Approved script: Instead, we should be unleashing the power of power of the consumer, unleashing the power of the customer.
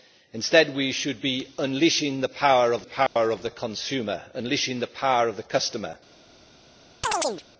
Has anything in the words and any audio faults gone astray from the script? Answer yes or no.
yes